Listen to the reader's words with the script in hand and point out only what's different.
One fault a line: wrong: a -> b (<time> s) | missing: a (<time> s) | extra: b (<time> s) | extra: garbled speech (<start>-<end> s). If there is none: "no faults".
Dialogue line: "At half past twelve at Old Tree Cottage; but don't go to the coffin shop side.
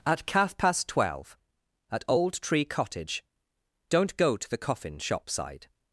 wrong: half -> calf (0.2 s)
missing: but (3.2 s)